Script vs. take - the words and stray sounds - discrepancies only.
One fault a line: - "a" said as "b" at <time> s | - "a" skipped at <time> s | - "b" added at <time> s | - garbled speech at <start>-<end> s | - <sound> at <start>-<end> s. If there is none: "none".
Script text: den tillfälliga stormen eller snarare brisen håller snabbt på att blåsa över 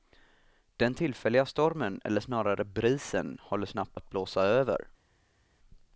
- "på" skipped at 4.0 s